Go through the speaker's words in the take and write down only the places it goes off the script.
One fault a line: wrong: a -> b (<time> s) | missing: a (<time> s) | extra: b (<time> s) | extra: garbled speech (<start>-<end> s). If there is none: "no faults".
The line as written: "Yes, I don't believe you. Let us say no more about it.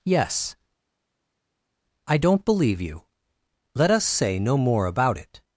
no faults